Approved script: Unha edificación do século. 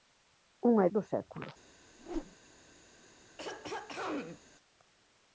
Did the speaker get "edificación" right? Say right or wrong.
wrong